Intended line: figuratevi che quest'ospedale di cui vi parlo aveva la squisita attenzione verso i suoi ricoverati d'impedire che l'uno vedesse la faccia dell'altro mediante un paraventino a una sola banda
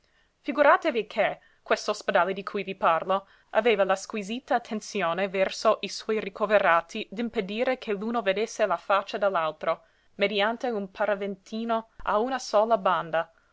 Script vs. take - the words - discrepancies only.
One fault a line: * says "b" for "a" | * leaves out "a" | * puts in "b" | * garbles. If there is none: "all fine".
all fine